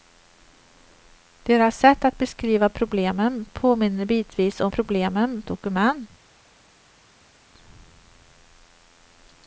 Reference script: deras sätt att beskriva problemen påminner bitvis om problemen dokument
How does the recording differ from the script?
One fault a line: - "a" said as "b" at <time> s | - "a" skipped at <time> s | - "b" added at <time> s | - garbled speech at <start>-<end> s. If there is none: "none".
none